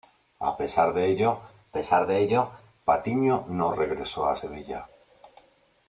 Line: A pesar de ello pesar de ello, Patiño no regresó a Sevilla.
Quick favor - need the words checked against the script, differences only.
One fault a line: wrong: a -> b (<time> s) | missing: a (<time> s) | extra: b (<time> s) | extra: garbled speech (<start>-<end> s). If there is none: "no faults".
no faults